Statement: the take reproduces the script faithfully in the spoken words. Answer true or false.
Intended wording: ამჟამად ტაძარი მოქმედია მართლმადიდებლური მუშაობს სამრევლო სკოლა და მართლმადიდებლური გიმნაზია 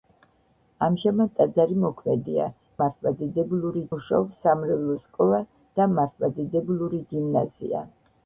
true